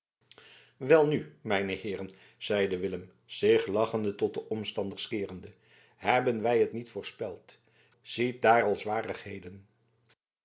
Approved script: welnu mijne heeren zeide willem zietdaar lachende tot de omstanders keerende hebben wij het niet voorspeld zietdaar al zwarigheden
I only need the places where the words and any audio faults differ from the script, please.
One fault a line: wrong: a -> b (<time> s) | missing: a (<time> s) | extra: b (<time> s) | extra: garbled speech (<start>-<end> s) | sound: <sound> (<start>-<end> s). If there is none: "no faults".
wrong: zietdaar -> zich (3.2 s)